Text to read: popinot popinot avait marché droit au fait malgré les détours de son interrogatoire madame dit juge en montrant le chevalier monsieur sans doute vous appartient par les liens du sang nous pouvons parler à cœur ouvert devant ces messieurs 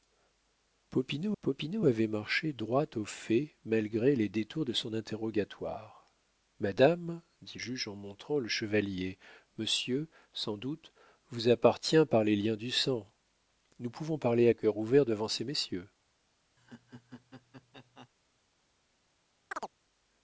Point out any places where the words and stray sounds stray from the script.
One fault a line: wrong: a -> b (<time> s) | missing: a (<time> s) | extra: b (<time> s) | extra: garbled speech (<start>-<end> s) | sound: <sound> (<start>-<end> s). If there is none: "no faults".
sound: laugh (16.6-18.1 s)
sound: chirp (19.5-19.7 s)